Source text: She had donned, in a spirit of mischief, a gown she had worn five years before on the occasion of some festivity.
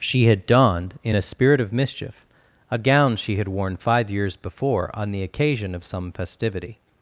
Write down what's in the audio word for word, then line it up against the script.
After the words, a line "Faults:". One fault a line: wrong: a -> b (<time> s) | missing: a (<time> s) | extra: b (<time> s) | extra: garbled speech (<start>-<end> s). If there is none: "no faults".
She had donned, in a spirit of mischief, a gown she had worn five years before on the occasion of some festivity.
Faults:
no faults